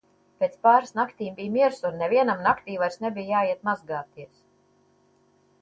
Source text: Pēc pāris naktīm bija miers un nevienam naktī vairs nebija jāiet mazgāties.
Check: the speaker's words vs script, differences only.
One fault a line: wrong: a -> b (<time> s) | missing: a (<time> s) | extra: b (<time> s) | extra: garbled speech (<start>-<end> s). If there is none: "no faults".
no faults